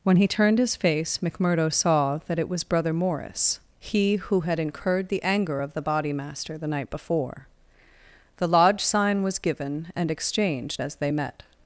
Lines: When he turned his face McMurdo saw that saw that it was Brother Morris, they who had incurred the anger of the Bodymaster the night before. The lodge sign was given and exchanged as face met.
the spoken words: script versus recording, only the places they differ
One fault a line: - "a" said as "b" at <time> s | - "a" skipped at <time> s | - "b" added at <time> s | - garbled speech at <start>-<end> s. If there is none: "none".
- "saw that" skipped at 2.4 s
- "they" said as "he" at 3.8 s
- "face" said as "they" at 11.0 s